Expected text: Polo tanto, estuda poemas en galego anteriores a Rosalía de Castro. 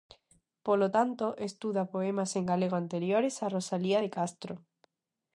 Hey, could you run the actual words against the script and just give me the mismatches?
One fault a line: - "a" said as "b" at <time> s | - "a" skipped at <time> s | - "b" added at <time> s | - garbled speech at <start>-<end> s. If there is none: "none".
none